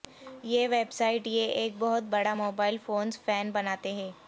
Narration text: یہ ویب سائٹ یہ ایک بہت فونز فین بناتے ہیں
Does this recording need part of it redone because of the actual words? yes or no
yes